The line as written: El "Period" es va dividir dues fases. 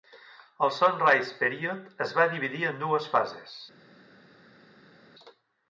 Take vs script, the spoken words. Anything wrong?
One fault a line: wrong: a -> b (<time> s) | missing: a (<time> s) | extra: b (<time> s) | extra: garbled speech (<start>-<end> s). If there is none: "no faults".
extra: Sunrise (0.8 s)
extra: en (2.7 s)